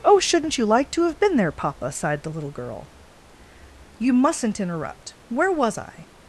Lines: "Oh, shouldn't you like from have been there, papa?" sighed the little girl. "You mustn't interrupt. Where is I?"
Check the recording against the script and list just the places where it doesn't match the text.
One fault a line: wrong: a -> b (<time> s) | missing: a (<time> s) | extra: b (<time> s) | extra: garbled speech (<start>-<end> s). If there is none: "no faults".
wrong: from -> to (0.9 s)
wrong: is -> was (5.5 s)